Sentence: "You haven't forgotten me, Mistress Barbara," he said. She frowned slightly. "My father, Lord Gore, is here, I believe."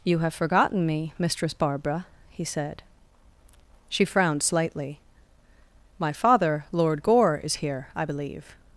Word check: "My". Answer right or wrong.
right